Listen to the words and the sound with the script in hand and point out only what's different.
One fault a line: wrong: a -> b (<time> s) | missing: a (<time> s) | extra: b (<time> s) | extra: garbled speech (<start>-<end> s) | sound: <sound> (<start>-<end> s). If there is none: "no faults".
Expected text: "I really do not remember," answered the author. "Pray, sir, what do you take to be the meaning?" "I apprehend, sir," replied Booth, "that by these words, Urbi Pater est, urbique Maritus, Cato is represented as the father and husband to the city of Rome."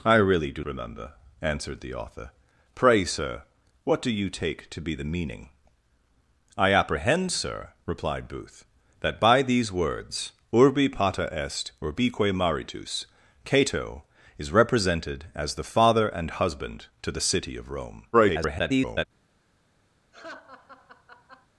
missing: not (0.6 s)
extra: garbled speech (18.1-19.1 s)
sound: laugh (20.1-21.5 s)